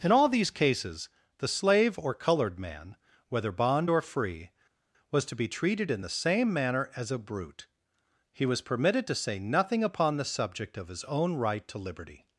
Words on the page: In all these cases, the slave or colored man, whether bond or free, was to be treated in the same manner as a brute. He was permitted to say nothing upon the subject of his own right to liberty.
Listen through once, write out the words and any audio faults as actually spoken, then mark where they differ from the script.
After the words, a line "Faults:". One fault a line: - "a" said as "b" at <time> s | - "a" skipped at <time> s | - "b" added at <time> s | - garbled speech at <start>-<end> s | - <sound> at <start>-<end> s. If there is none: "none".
In all these cases, the slave or colored man, whether bond or free, was to be treated in the same manner as a brute. He was permitted to say nothing upon the subject of his own right to liberty.
Faults:
none